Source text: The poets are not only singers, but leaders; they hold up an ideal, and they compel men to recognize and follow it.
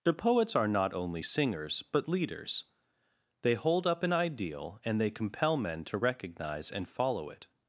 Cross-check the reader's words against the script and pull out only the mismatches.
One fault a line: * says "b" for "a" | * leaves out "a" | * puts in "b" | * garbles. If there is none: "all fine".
all fine